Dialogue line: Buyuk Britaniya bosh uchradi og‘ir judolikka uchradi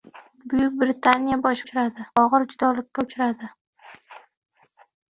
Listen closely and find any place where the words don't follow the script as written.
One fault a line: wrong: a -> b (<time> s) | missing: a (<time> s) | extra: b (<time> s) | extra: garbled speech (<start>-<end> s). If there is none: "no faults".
no faults